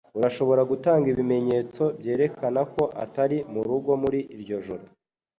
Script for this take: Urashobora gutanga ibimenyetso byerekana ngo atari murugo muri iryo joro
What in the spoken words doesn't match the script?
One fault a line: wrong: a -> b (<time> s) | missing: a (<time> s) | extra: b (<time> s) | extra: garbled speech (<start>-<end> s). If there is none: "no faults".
wrong: ngo -> ko (2.7 s)